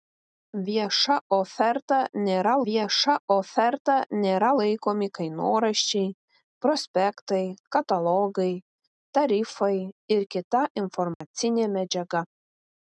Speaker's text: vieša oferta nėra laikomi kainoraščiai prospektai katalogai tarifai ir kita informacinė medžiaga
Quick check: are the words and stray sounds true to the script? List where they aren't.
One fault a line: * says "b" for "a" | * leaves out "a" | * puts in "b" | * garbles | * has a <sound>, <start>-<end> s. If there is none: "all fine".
* puts in "vieša oferta nėra"
* has a dropout, 11.1-11.2 s